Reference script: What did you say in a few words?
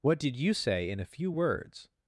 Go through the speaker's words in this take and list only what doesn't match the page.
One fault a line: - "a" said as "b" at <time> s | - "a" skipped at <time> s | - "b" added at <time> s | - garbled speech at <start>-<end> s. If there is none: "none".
none